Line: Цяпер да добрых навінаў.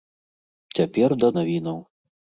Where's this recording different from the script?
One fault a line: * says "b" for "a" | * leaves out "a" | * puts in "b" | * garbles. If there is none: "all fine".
* leaves out "добрых"